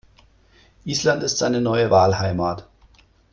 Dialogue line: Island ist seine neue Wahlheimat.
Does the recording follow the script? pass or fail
pass